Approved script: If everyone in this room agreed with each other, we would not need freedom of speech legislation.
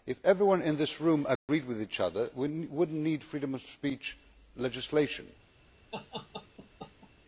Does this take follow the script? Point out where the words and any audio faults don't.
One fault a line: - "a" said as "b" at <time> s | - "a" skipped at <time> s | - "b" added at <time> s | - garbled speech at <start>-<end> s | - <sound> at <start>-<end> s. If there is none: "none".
- dropout at 1.4-1.5 s
- laugh at 5.9-7.1 s